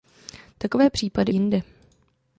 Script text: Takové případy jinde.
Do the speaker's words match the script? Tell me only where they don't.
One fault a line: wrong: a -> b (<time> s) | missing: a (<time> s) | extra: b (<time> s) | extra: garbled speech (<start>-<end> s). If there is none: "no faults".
no faults